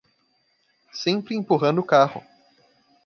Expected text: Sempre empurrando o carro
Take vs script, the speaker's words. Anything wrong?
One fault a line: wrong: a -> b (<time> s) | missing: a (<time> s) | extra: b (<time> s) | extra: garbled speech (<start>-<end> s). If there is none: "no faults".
no faults